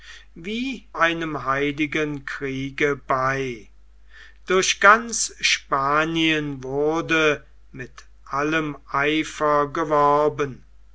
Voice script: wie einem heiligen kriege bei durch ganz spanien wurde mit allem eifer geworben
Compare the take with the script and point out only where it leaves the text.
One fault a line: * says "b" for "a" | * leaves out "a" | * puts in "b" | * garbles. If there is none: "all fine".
all fine